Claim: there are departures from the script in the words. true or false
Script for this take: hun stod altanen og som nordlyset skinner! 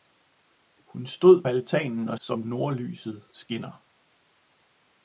false